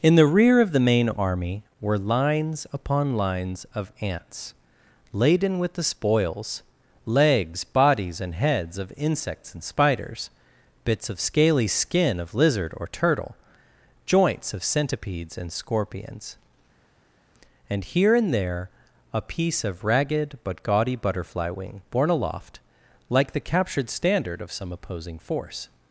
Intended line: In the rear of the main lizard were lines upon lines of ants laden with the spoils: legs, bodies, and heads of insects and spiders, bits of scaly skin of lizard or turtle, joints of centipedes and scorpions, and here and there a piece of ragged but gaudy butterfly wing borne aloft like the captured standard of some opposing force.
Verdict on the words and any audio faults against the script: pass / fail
fail